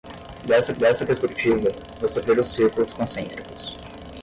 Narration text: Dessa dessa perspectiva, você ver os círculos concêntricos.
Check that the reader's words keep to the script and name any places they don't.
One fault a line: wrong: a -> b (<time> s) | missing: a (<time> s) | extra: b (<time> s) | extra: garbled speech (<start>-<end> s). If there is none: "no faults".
no faults